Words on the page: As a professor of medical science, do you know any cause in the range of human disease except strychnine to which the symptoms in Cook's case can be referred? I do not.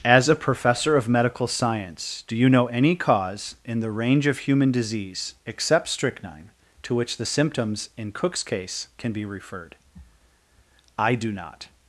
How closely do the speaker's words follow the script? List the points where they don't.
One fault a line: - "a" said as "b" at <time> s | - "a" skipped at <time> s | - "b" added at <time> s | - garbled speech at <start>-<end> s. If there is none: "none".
none